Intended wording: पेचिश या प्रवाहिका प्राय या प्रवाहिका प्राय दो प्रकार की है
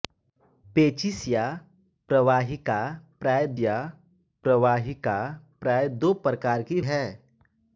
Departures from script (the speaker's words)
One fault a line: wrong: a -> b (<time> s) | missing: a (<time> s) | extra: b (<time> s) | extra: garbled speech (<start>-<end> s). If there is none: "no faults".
no faults